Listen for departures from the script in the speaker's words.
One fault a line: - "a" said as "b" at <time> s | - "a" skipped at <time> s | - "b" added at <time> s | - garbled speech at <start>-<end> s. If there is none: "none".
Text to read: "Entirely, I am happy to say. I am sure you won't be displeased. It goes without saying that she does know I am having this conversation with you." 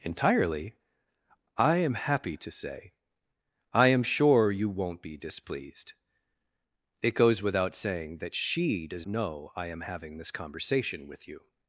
none